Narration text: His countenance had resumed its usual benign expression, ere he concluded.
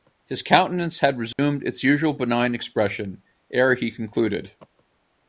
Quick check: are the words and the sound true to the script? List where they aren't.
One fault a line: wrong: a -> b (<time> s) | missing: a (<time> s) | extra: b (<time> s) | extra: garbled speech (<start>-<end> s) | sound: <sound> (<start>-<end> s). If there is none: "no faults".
sound: dropout (1.3-1.4 s)